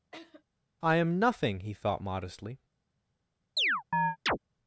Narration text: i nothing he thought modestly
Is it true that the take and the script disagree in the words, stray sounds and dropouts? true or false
true